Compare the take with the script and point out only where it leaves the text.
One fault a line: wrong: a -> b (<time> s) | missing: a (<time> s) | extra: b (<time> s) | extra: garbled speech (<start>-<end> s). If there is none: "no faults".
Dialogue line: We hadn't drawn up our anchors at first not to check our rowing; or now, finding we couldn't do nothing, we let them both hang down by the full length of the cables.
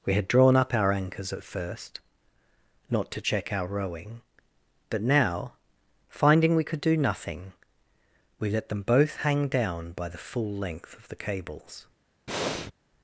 wrong: hadn't -> had (0.1 s)
wrong: or -> but (4.9 s)
wrong: couldn't -> could (6.6 s)